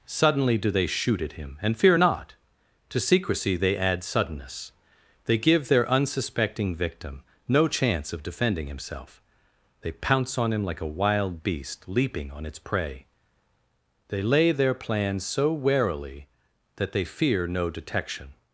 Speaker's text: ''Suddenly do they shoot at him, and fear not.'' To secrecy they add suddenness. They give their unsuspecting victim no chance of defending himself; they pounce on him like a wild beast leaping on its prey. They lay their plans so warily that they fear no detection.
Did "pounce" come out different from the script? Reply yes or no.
no